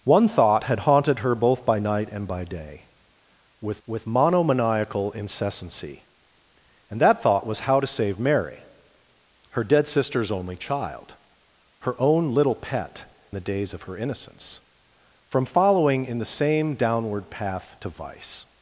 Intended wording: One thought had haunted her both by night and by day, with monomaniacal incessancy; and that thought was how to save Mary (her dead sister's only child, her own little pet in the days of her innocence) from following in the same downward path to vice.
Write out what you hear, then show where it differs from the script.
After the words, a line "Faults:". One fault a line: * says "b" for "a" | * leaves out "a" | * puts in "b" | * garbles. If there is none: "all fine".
One thought had haunted her both by night and by day, with with monomaniacal incessancy; and that thought was how to save Mary (her dead sister's only child, her own little pet the days of her innocence) from following in the same downward path to vice.
Faults:
* puts in "with"
* leaves out "in"